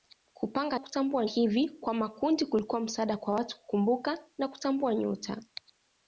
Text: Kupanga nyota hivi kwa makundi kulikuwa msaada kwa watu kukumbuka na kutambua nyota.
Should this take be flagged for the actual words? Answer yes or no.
yes